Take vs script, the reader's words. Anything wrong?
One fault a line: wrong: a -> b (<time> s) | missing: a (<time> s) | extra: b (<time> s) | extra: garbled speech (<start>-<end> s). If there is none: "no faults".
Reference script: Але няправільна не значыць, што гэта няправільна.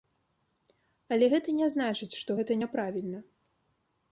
wrong: няправільна -> гэта (1.3 s)